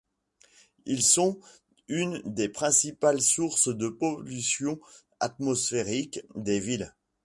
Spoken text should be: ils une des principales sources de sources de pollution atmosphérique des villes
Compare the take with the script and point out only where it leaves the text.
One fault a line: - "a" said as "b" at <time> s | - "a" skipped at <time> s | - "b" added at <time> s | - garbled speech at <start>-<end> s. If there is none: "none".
- "sont" added at 1.0 s
- "sources de" skipped at 3.9 s